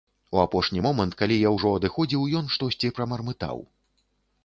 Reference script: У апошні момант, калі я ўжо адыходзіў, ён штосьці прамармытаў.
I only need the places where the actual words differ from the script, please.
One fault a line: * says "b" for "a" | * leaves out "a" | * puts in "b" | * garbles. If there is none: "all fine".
all fine